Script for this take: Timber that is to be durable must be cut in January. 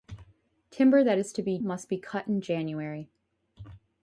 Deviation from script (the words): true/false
true